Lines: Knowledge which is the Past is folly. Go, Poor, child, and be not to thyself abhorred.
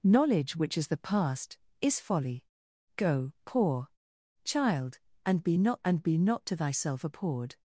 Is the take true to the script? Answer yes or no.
no